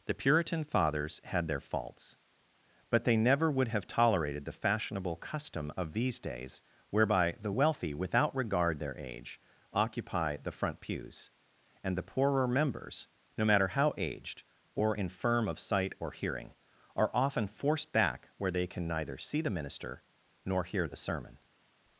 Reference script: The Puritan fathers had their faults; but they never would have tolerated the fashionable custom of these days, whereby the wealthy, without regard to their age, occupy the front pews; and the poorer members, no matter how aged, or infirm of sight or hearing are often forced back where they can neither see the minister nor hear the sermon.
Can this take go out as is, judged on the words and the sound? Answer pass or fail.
fail